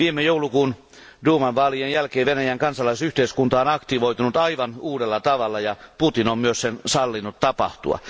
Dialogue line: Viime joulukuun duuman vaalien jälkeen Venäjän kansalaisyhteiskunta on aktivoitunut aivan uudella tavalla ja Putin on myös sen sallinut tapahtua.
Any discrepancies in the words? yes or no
no